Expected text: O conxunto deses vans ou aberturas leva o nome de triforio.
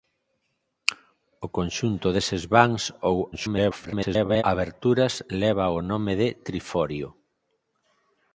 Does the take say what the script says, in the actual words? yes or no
no